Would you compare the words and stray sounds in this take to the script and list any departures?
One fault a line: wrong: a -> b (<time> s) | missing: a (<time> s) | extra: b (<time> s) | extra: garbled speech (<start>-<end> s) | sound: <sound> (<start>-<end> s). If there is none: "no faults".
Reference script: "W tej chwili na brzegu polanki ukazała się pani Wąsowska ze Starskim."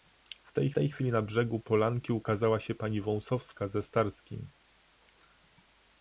extra: tej (0.7 s)